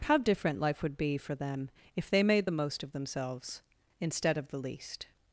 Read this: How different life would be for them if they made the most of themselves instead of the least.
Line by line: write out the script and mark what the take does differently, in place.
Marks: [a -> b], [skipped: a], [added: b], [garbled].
How different life would be for them if they made the most of themselves instead of the least.